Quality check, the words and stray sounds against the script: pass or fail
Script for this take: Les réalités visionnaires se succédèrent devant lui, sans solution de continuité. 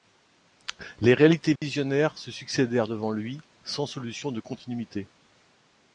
fail